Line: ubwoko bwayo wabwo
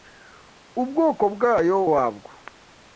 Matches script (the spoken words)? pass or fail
pass